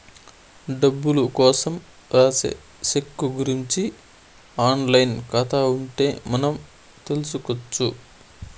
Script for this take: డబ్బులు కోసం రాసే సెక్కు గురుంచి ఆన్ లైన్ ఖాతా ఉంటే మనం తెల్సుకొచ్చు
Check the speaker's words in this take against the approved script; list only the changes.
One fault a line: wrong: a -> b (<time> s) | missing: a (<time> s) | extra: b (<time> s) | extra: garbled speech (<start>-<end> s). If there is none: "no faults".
no faults